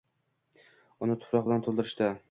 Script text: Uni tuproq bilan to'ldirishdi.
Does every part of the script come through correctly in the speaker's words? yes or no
yes